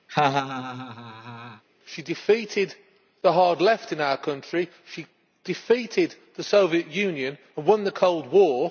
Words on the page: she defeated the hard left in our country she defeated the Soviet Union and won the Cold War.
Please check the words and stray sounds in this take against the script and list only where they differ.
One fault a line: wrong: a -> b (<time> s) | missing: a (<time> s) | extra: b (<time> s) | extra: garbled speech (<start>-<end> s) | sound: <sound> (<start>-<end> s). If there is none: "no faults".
sound: laugh (0.1-1.6 s)